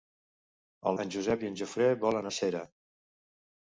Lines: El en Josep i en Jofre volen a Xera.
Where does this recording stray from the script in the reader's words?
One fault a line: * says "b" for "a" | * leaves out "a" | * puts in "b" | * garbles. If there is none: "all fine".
all fine